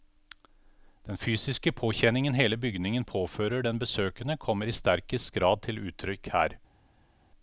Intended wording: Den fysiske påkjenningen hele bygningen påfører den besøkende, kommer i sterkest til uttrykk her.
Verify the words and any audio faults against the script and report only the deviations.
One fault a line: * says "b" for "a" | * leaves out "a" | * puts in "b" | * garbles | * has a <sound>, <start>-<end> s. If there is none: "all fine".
* puts in "grad"